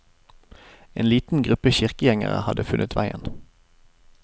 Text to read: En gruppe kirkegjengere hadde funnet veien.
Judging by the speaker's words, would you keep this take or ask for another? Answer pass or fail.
fail